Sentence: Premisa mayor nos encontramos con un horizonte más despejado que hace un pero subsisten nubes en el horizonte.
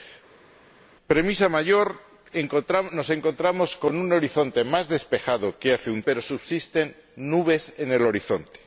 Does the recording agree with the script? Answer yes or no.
yes